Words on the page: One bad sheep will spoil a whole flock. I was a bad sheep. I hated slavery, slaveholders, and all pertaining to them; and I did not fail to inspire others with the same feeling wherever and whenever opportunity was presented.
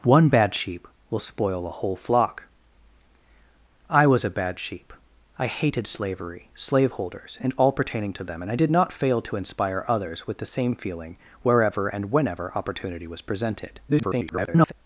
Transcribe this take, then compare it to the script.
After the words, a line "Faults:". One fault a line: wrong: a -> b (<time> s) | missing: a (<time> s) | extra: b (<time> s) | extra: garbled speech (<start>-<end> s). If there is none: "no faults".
One bad sheep will spoil a whole flock. I was a bad sheep. I hated slavery, slaveholders, and all pertaining to them; and I did not fail to inspire others with the same feeling wherever and whenever opportunity was presented. [garbled]
Faults:
extra: garbled speech (13.9-14.7 s)